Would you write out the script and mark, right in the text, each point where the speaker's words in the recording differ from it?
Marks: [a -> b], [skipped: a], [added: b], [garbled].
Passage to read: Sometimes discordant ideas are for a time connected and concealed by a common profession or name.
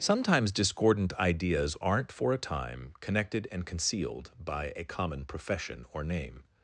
Sometimes discordant ideas [are -> aren't] for a time connected and concealed by a common profession or name.